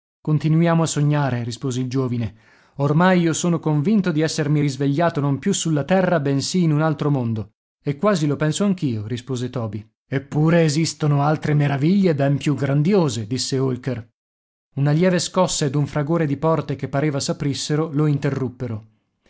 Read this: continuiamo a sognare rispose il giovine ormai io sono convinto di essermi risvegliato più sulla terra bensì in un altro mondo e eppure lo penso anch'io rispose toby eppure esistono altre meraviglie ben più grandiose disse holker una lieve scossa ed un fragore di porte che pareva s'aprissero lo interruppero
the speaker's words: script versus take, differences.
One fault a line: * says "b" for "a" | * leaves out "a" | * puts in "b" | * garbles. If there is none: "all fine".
* puts in "non"
* says "quasi" for "eppure"